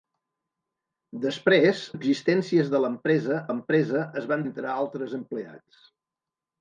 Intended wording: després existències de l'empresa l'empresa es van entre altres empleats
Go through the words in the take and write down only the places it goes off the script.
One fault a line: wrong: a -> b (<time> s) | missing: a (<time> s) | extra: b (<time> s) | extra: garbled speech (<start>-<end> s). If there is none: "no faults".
no faults